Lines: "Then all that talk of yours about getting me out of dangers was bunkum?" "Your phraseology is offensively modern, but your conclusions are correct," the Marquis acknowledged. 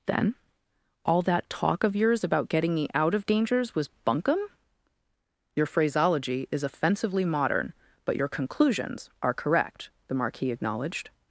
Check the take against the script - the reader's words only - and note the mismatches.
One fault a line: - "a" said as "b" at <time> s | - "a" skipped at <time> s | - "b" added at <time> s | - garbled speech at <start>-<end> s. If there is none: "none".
none